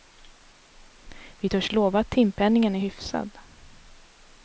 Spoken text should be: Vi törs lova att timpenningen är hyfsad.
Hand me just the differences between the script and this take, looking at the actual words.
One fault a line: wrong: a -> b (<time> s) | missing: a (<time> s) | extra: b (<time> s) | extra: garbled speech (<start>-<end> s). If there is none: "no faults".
no faults